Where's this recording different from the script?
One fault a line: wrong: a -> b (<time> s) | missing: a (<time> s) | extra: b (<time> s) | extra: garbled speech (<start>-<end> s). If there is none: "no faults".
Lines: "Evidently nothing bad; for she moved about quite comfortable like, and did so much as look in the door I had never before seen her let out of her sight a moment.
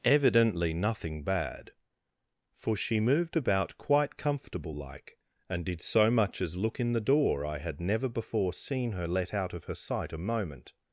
no faults